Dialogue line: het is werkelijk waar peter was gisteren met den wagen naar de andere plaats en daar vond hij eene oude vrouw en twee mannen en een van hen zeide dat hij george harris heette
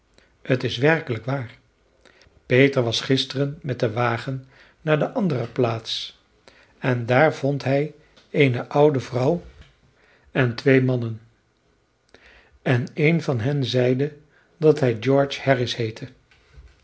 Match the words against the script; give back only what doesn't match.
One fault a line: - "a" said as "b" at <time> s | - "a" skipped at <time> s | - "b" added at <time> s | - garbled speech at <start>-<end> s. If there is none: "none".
none